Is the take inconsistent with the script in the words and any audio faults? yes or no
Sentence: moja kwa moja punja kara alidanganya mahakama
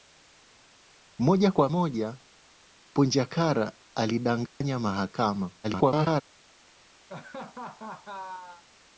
yes